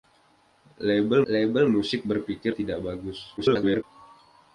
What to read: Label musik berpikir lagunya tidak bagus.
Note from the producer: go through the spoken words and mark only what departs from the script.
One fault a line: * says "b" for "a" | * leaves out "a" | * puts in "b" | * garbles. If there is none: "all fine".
* puts in "label"
* leaves out "lagunya"
* garbles